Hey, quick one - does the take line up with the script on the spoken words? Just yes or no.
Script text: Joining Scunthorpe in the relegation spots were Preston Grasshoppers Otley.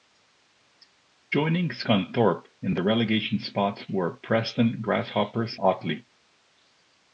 yes